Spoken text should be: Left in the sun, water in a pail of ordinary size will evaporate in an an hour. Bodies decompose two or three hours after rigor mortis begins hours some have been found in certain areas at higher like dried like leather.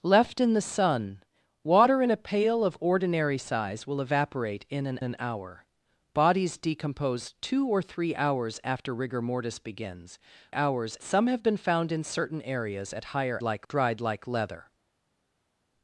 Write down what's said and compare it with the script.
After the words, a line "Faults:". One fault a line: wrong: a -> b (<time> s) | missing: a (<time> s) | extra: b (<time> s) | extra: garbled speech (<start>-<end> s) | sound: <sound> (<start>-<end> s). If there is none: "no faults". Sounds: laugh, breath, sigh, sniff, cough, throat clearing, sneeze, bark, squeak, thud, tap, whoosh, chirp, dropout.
Left in the sun, water in a pail of ordinary size will evaporate in an an hour. Bodies decompose two or three hours after rigor mortis begins hours some have been found in certain areas at higher like dried like leather.
Faults:
no faults